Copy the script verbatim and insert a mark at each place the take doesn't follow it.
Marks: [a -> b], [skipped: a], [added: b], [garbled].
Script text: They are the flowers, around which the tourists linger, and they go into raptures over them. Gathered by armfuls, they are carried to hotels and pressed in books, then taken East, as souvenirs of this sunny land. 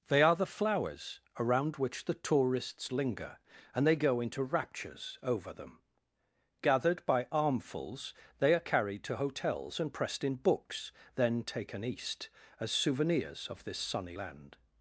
They are the flowers, around which the tourists linger, and they go into raptures over them. Gathered by armfuls, they are carried to hotels and pressed in books, then taken East, as souvenirs of this sunny land.